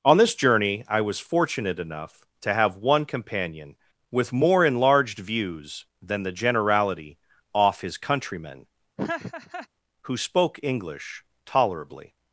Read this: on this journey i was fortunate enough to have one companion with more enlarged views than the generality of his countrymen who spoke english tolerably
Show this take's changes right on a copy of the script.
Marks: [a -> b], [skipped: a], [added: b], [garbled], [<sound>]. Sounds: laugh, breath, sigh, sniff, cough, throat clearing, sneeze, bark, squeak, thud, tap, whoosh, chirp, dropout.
on this journey i was fortunate enough to have one companion with more enlarged views than the generality [of -> off] his countrymen [laugh] who spoke english tolerably